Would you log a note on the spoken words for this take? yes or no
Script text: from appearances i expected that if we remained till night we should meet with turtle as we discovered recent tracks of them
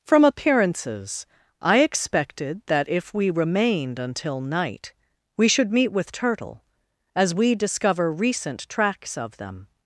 yes